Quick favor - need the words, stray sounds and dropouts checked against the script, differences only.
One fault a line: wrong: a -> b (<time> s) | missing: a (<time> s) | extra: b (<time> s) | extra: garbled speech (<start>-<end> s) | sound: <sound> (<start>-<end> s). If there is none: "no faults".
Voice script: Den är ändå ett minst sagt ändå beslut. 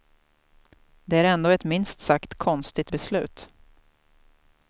wrong: Den -> Det (1.1 s)
wrong: ändå -> konstigt (2.4 s)